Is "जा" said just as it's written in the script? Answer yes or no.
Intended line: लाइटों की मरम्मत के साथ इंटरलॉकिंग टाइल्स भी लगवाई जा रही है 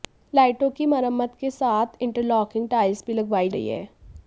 no